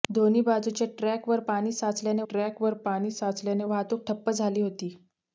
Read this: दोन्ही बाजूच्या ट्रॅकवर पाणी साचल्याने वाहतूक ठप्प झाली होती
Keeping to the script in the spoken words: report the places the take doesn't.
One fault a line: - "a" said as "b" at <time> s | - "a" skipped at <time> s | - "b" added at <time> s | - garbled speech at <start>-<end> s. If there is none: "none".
- "ट्रॅकवर पाणी साचल्याने" added at 2.3 s